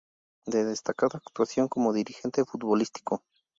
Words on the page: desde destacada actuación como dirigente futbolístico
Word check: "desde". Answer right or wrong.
wrong